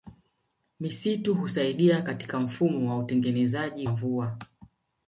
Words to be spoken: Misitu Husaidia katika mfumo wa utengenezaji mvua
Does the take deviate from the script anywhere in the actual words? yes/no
no